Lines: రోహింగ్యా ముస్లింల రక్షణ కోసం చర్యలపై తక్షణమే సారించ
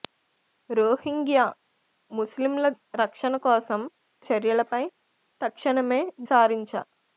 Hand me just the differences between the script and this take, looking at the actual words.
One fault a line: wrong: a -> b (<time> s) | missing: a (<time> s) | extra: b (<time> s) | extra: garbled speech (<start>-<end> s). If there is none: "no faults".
no faults